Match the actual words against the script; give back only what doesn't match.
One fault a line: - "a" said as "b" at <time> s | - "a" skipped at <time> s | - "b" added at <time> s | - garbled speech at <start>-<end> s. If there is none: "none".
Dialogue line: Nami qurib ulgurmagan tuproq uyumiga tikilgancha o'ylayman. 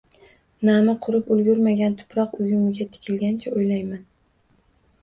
none